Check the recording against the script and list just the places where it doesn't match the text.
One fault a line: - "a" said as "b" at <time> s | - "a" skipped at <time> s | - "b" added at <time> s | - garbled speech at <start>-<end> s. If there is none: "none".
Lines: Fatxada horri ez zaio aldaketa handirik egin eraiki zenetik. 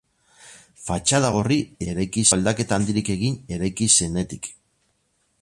- "zaio" said as "eraiki" at 1.9 s